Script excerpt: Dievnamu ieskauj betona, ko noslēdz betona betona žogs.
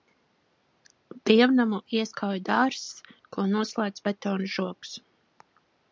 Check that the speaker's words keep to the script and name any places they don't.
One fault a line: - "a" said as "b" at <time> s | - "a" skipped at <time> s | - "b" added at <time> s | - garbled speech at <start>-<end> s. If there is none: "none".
- "betona" said as "dārzs" at 2.5 s
- "betona" skipped at 4.5 s